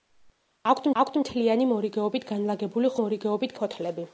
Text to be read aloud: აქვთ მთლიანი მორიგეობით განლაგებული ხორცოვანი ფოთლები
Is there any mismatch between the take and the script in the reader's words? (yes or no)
yes